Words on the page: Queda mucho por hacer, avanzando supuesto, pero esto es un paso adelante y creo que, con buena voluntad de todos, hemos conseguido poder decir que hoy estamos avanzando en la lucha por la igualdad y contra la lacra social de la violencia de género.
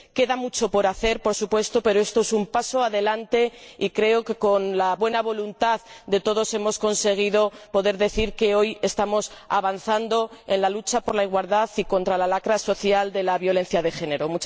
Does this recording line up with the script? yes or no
no